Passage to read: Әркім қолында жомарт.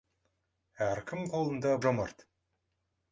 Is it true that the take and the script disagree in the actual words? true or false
false